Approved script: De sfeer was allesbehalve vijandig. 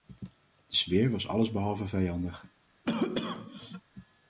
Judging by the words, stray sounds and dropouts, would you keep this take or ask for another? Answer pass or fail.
fail